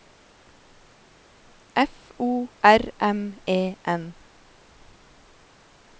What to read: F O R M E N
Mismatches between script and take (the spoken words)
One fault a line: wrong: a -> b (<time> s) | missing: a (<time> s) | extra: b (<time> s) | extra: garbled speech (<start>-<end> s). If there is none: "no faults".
no faults